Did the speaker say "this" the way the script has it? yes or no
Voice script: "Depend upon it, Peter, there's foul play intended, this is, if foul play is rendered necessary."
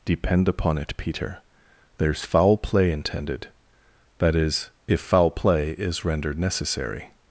no